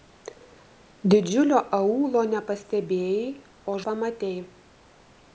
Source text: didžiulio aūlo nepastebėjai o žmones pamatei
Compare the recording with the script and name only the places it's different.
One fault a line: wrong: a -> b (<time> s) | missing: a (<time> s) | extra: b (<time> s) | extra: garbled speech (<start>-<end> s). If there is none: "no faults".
missing: žmones (3.8 s)